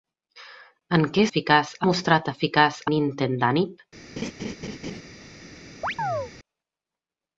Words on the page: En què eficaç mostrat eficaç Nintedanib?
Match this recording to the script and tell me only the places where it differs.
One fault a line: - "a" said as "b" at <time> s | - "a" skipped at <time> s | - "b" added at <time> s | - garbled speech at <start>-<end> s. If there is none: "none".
none